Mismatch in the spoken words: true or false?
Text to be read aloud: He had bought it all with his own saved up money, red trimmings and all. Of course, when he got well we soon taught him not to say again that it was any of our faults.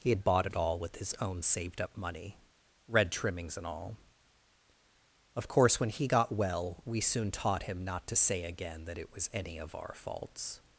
false